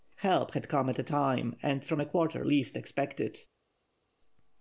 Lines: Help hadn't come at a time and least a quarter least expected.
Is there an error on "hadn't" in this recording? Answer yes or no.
yes